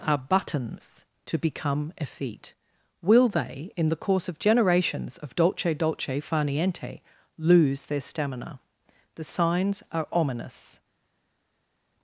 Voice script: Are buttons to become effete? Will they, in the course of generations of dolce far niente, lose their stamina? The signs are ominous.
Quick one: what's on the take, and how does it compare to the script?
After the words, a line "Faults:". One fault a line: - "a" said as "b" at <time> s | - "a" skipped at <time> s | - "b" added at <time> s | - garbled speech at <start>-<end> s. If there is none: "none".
Are buttons to become effete? Will they, in the course of generations of dolce dolce far niente, lose their stamina? The signs are ominous.
Faults:
- "dolce" added at 5.7 s